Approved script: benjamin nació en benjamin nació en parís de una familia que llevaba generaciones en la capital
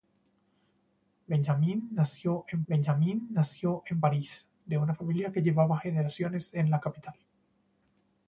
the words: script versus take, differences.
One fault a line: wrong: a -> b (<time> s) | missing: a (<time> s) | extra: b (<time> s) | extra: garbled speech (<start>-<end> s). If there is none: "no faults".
no faults